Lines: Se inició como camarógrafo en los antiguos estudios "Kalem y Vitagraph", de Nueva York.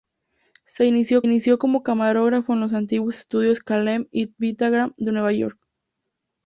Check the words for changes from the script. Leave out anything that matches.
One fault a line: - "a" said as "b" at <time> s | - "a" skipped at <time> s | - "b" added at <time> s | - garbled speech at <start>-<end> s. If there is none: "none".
- "inició" added at 1.2 s